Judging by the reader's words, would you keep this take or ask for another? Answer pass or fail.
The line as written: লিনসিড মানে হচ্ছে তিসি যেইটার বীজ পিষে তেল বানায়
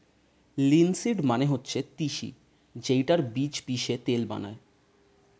pass